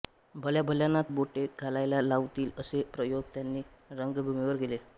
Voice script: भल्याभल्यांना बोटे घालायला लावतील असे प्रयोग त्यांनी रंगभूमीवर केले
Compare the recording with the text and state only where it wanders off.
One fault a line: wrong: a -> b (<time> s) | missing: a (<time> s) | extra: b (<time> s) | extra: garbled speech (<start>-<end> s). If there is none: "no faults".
no faults